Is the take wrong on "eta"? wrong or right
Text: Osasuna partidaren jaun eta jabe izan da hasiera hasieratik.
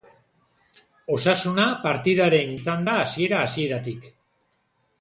wrong